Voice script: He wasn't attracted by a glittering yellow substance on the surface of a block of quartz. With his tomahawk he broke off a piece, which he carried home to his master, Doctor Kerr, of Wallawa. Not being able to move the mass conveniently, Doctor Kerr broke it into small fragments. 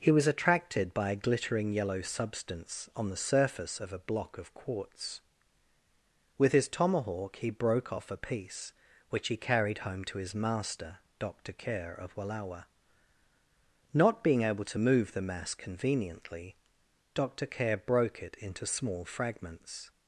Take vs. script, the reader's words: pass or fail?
fail